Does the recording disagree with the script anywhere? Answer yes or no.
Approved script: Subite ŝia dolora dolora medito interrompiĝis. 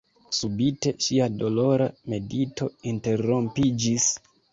yes